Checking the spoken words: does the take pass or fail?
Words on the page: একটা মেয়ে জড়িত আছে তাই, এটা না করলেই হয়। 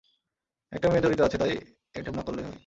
pass